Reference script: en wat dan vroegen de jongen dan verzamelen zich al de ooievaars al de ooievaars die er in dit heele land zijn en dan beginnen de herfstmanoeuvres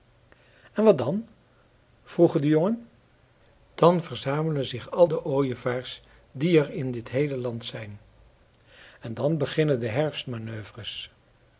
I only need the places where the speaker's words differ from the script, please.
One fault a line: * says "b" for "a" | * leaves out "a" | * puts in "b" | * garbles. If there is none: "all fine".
* leaves out "al de ooievaars"